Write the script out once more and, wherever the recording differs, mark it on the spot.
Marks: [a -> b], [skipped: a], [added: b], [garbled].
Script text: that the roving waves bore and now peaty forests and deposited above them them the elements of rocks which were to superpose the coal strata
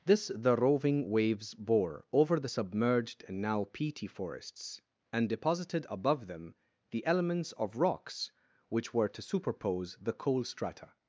[that -> this] the roving waves bore [added: over the submerged] and now peaty forests and deposited above them [skipped: them] the elements of rocks which were to superpose the coal strata